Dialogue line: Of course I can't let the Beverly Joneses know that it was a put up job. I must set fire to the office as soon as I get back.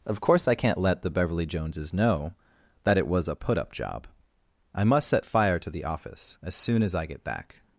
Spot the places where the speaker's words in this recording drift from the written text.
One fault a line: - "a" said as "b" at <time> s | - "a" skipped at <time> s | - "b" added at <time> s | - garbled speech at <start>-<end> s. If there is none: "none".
none